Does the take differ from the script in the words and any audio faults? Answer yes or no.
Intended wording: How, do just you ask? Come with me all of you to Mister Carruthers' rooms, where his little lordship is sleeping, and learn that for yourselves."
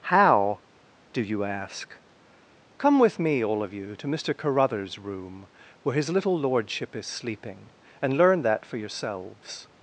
yes